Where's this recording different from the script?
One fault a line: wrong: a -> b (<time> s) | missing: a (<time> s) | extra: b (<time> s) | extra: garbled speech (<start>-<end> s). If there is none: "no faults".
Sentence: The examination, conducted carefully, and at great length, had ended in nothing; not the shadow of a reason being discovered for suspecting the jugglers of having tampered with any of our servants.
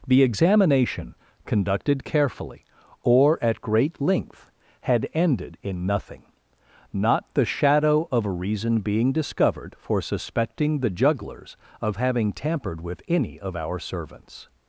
wrong: and -> or (3.0 s)